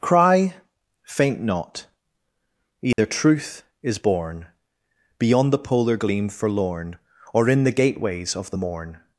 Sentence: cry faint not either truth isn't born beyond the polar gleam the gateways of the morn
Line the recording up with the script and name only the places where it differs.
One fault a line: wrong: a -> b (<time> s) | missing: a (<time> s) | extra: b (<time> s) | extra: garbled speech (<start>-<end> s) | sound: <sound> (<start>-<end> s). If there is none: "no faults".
sound: dropout (2.9-3.0 s)
wrong: isn't -> is (3.8 s)
extra: forlorn or in (6.3 s)